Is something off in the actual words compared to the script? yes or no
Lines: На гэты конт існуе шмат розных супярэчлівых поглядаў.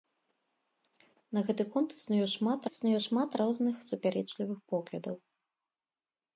yes